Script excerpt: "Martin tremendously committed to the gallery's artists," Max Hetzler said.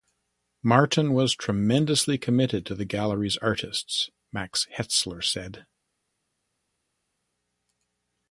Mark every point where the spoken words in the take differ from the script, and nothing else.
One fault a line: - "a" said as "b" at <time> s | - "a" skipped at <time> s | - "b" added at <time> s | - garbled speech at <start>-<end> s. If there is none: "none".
- "was" added at 1.1 s